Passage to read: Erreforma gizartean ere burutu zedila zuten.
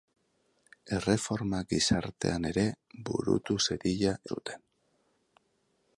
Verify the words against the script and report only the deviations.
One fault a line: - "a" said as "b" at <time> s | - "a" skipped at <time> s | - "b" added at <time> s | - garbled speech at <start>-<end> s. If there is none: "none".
none